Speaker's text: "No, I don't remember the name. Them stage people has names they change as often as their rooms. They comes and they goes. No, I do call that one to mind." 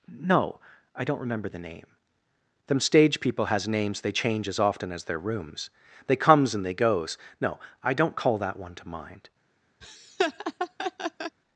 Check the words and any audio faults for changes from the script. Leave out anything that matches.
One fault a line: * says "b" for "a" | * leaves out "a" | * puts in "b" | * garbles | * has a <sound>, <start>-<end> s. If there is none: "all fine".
* says "don't" for "do"
* has a laugh, 9.8-11.4 s